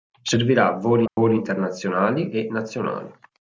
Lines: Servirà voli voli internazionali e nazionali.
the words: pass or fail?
pass